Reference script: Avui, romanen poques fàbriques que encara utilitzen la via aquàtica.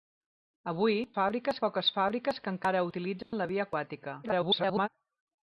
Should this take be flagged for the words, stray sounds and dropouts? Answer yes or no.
yes